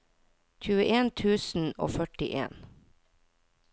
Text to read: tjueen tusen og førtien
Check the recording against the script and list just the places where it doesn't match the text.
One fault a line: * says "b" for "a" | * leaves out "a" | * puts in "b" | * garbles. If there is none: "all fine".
all fine